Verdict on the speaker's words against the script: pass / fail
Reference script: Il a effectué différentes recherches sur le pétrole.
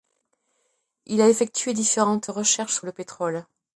pass